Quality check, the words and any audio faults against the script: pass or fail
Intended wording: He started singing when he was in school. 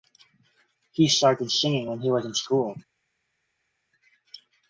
pass